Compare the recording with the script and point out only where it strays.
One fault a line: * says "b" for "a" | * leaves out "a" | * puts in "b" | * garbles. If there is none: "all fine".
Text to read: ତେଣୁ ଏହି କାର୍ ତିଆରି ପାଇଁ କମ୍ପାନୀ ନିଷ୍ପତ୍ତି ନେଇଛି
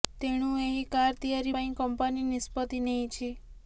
all fine